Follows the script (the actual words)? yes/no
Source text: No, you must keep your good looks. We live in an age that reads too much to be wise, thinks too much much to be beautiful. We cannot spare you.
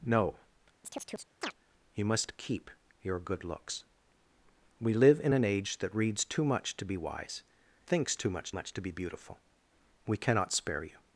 yes